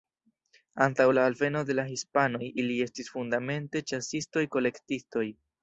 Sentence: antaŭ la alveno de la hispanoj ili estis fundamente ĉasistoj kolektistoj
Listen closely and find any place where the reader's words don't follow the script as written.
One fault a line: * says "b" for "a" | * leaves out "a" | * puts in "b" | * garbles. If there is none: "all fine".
all fine